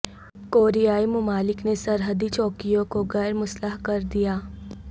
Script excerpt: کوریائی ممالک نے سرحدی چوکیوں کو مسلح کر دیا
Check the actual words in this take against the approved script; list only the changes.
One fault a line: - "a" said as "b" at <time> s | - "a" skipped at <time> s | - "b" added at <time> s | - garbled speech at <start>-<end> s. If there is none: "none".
- "غیر" added at 3.1 s